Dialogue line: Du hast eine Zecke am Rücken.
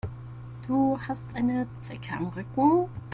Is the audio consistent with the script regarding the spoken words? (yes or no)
yes